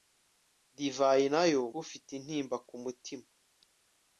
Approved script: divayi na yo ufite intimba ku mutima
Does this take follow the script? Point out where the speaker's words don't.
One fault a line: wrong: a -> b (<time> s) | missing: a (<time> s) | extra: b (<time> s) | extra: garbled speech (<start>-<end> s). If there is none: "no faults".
no faults